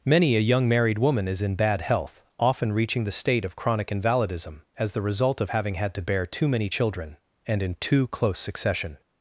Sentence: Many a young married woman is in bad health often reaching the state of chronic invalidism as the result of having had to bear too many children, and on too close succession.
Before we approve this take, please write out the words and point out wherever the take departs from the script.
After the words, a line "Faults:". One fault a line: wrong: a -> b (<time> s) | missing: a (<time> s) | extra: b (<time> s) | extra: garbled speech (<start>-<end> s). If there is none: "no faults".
Many a young married woman is in bad health often reaching the state of chronic invalidism as the result of having had to bear too many children, and in too close succession.
Faults:
wrong: on -> in (7.6 s)